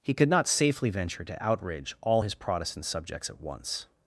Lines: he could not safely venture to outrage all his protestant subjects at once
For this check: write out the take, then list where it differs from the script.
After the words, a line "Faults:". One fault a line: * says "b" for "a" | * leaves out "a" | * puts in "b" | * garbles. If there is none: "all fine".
he could not safely venture to outrage all his protestant subjects at once
Faults:
all fine